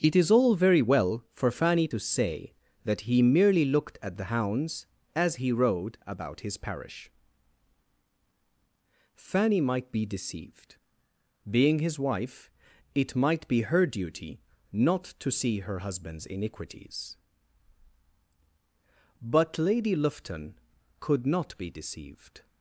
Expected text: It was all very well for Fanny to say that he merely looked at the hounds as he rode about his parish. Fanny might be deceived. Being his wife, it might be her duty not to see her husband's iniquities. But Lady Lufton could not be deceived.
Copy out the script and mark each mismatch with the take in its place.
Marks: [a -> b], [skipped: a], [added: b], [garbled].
It [was -> is] all very well for Fanny to say that he merely looked at the hounds as he rode about his parish. Fanny might be deceived. Being his wife, it might be her duty not to see her husband's iniquities. But Lady Lufton could not be deceived.